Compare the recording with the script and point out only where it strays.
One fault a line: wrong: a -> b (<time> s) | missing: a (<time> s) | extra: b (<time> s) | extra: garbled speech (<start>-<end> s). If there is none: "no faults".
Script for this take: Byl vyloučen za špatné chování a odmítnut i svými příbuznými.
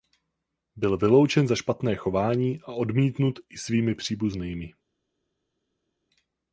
no faults